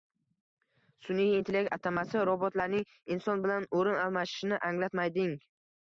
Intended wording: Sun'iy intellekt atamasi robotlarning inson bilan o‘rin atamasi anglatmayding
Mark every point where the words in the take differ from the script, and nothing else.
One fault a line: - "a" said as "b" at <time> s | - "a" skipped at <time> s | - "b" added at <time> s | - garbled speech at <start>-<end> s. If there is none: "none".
- "atamasi" said as "almashishini" at 4.1 s